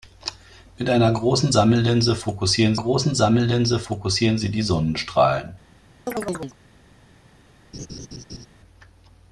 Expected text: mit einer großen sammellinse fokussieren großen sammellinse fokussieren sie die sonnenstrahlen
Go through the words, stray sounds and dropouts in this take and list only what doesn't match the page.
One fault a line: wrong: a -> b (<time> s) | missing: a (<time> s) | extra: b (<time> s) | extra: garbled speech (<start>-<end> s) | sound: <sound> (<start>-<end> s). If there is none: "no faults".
sound: chirp (6.1-6.6 s)
sound: laugh (7.7-8.5 s)